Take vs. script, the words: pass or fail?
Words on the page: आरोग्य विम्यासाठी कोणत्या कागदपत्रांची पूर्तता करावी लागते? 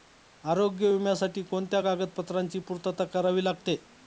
pass